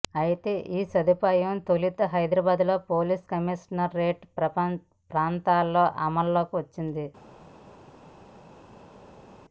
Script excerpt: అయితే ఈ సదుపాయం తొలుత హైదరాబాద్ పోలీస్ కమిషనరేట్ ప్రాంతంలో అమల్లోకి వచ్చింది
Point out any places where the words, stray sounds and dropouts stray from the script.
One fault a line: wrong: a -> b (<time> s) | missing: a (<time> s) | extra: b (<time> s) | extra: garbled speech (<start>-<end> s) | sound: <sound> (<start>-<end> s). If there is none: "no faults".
no faults